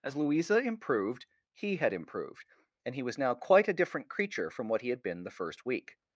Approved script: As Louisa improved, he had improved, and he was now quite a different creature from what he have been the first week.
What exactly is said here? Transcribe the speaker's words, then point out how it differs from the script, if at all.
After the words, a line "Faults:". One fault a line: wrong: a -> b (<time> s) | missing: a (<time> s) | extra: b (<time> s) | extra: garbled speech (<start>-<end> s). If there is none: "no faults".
As Louisa improved, he had improved, and he was now quite a different creature from what he had been the first week.
Faults:
wrong: have -> had (4.9 s)